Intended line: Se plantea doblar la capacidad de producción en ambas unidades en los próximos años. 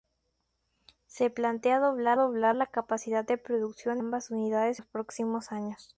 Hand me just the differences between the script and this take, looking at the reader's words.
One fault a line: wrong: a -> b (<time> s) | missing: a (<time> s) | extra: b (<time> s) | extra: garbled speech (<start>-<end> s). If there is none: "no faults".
extra: doblar (2.1 s)
missing: en (4.0 s)
missing: en (4.8 s)